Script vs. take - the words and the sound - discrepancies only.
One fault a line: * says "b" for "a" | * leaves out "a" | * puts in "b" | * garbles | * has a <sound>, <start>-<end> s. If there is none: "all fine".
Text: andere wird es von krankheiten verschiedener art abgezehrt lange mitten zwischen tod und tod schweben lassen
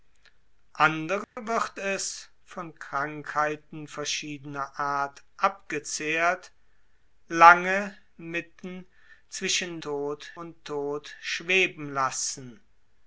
* has a dropout, 1.2-1.4 s